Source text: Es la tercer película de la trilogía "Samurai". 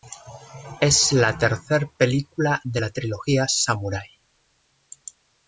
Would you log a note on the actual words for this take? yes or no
no